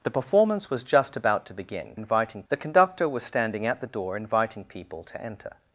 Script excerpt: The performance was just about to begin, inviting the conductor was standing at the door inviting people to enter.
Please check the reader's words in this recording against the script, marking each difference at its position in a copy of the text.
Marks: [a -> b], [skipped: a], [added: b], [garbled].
The performance was just about to begin, inviting the conductor was standing at the door inviting people to enter.